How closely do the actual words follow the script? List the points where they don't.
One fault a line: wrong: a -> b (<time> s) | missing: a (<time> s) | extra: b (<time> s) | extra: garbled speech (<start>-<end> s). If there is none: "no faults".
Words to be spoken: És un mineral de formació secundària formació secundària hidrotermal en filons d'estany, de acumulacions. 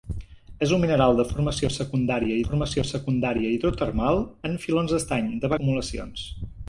no faults